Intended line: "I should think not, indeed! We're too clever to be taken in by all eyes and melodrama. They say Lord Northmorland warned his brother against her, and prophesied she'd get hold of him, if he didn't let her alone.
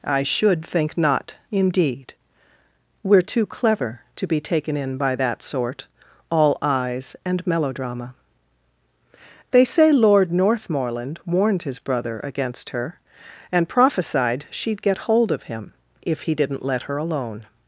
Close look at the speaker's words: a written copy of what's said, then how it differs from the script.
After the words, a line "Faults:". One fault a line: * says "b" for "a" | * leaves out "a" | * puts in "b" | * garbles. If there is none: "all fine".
"I should think not, indeed! We're too clever to be taken in by that sort, all eyes and melodrama. They say Lord Northmorland warned his brother against her, and prophesied she'd get hold of him, if he didn't let her alone.
Faults:
* puts in "that sort"